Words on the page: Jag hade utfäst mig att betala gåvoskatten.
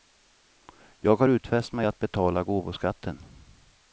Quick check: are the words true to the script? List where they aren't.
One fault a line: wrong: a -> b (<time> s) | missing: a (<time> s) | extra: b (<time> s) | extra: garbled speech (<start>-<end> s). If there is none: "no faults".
wrong: hade -> har (1.1 s)